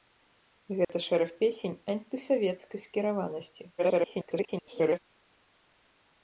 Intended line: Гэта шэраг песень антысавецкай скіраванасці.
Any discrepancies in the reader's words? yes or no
yes